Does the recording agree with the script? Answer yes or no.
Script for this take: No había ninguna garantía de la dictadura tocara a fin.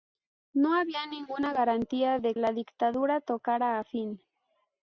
yes